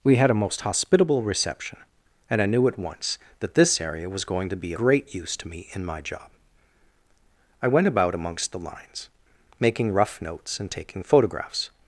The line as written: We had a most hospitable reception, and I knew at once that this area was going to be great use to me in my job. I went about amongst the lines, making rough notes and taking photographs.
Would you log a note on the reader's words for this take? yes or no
no